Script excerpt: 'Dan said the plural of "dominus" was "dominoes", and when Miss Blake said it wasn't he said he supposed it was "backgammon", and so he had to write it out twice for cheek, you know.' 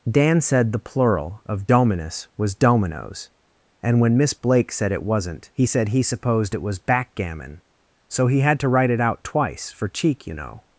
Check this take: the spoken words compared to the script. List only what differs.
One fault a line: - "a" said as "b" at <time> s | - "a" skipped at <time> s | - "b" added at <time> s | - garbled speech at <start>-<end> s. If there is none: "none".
- "and" skipped at 7.6 s